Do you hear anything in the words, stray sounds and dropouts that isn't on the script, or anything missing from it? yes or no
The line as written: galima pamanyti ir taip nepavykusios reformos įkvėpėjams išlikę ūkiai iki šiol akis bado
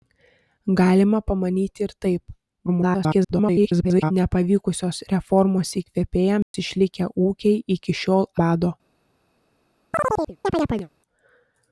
yes